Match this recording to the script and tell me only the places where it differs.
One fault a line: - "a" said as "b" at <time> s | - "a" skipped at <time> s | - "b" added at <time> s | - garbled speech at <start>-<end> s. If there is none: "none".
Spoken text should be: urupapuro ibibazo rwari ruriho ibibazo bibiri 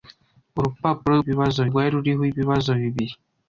none